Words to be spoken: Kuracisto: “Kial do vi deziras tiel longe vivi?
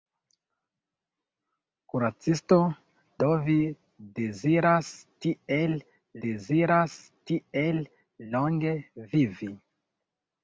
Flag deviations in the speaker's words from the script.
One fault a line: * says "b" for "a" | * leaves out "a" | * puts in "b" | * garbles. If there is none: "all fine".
* leaves out "Kial"
* puts in "deziras tiel"